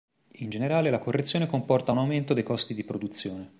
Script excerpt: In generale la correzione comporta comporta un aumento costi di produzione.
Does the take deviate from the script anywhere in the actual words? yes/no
yes